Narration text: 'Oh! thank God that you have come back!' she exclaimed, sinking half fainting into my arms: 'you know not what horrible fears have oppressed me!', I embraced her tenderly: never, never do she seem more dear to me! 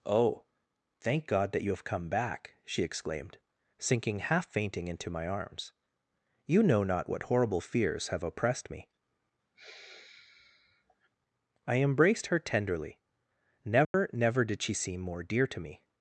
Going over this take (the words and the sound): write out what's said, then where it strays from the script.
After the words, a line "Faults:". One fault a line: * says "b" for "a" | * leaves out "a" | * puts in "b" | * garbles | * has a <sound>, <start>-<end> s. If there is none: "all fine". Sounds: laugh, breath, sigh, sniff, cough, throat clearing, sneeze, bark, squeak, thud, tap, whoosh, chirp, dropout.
'Oh! thank God that you have come back!' she exclaimed, sinking half fainting into my arms: 'you know not what horrible fears have oppressed me!', I embraced her tenderly: never, never did she seem more dear to me!
Faults:
* has a sigh, 9.5-11.1 s
* has a dropout, 13.8-13.9 s
* says "did" for "do"